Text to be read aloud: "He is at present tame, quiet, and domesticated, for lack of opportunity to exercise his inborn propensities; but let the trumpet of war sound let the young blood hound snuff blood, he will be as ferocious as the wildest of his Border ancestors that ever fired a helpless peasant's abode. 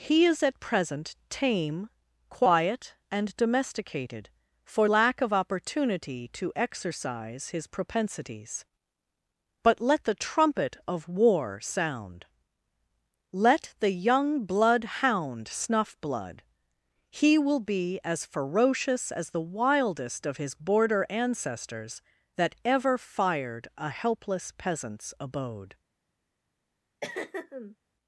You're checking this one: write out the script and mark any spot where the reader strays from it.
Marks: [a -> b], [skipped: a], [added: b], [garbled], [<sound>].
"He is at present tame, quiet, and domesticated, for lack of opportunity to exercise his [skipped: inborn] propensities; but let the trumpet of war sound let the young blood hound snuff blood, he will be as ferocious as the wildest of his Border ancestors that ever fired a helpless peasant's abode. [throat clearing]